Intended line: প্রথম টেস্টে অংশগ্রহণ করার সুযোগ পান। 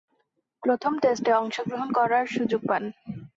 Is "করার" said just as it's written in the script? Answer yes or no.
yes